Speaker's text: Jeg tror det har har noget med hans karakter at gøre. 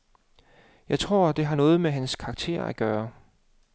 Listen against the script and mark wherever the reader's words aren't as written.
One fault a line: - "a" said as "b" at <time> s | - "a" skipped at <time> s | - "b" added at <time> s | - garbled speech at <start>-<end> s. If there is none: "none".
- "har" skipped at 1.6 s